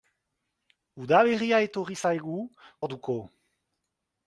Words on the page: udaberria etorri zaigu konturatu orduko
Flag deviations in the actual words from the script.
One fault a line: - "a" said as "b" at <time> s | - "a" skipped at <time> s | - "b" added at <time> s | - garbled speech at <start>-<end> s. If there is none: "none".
- "konturatu" skipped at 2.4 s